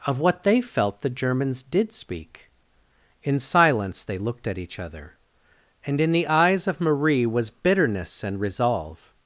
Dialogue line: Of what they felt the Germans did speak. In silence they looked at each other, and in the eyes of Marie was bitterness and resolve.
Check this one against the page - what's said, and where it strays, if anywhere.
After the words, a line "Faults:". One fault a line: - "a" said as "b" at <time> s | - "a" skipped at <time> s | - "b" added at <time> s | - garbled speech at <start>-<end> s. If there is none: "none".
Of what they felt the Germans did speak. In silence they looked at each other, and in the eyes of Marie was bitterness and resolve.
Faults:
none